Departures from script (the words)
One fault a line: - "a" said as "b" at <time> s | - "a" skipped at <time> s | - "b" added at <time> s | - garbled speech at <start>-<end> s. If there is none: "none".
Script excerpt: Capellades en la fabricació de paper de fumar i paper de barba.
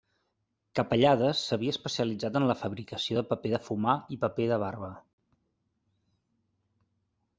- "s'havia especialitzat" added at 1.5 s